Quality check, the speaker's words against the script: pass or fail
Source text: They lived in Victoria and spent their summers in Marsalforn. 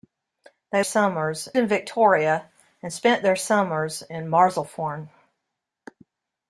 fail